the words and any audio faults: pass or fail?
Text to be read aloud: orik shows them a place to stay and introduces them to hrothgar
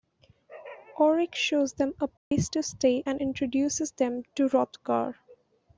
fail